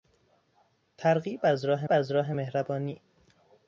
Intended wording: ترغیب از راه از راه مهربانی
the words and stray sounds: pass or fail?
pass